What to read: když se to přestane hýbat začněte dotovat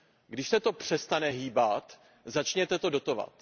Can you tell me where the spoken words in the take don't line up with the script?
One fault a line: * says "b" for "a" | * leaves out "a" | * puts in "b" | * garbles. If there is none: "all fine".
* puts in "to"